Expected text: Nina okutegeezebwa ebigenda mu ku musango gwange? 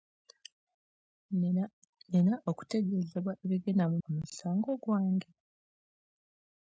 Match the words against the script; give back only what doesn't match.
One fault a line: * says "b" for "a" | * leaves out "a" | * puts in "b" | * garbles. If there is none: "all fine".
all fine